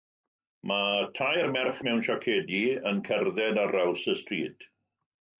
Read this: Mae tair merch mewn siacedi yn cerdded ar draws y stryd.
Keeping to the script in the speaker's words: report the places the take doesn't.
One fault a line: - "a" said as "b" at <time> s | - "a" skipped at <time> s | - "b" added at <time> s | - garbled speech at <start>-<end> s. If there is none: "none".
none